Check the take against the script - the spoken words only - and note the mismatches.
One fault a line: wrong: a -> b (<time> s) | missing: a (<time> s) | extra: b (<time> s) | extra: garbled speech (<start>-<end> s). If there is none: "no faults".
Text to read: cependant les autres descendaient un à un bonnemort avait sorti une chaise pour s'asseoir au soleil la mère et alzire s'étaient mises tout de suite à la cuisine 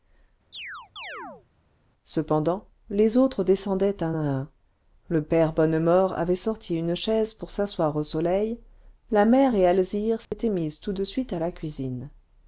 extra: le père (5.1 s)